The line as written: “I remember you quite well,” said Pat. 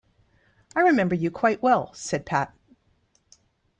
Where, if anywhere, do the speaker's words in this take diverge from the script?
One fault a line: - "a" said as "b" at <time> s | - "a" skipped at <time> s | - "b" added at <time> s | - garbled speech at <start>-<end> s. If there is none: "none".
none